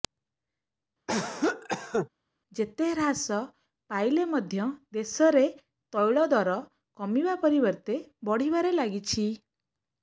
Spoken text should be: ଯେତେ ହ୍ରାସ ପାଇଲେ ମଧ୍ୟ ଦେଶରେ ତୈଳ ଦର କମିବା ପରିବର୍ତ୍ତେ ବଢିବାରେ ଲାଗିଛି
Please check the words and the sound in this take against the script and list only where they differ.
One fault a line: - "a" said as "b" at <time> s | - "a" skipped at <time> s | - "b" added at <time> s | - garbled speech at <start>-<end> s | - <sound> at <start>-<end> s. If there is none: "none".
- cough at 1.1-2.1 s